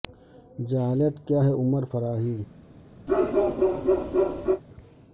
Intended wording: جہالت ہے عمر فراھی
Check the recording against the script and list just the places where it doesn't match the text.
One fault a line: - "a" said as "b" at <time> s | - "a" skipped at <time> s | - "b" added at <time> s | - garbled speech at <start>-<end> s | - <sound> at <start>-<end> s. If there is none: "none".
- "کیا" added at 1.3 s
- bark at 3.1-4.6 s